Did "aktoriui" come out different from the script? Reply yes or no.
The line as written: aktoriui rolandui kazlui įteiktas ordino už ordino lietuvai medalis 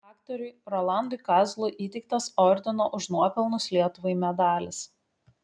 no